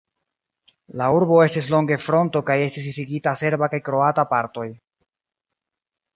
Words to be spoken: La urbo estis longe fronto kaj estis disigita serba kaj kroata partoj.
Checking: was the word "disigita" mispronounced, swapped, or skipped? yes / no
no